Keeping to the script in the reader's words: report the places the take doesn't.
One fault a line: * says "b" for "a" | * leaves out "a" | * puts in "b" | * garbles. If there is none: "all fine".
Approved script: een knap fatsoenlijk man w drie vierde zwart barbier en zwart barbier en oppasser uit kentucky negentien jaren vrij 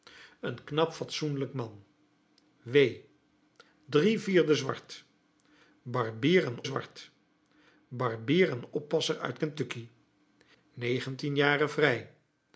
all fine